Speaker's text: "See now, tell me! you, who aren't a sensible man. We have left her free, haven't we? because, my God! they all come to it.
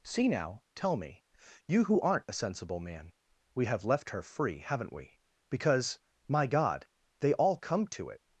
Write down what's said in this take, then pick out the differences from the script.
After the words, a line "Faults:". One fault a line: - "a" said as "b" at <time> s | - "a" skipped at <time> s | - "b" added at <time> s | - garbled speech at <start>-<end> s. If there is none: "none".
"See now, tell me! you, who aren't a sensible man. We have left her free, haven't we? because, my God! they all come to it.
Faults:
none